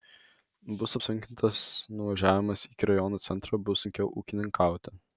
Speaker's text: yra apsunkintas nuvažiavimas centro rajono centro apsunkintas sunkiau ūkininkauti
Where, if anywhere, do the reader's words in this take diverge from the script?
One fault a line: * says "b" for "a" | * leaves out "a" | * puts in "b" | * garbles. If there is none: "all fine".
* says "bus" for "yra"
* says "iki" for "centro"
* says "bus" for "apsunkintas"